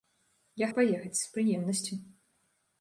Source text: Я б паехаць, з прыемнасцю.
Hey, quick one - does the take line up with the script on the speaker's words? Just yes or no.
yes